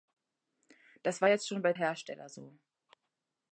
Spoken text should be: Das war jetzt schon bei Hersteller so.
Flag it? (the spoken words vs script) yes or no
no